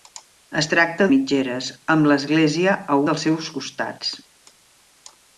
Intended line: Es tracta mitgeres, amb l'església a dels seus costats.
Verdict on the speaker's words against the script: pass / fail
pass